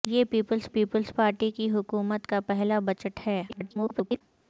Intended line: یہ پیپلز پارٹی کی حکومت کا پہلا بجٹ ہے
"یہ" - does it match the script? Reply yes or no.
yes